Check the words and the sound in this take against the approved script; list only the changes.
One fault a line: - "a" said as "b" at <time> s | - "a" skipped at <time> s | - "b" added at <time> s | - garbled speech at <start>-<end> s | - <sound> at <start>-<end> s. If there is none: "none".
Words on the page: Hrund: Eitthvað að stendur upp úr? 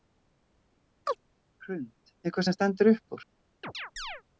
- chirp at 1.1-1.2 s
- "að" said as "sem" at 2.5 s
- chirp at 3.6-4.2 s